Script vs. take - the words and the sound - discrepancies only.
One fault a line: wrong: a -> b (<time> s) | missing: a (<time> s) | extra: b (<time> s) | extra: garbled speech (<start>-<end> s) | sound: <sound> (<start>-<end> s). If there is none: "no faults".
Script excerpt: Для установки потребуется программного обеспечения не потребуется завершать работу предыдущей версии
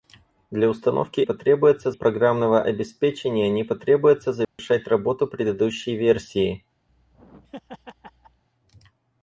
sound: dropout (4.4-4.6 s)
sound: laugh (6.9-8.4 s)